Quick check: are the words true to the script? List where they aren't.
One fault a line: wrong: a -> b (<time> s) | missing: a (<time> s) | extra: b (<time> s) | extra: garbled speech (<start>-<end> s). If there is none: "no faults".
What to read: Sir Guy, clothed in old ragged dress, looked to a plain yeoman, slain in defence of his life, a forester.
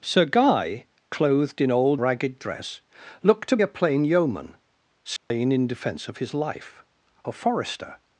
no faults